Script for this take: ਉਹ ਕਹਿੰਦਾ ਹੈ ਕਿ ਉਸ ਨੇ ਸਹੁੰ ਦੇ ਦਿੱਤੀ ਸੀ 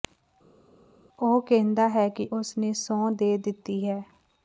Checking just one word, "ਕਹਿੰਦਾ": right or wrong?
right